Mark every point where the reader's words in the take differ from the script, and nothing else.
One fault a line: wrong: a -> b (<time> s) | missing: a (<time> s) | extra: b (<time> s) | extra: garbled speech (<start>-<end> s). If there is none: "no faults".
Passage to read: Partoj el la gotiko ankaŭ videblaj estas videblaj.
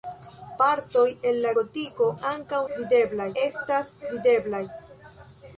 no faults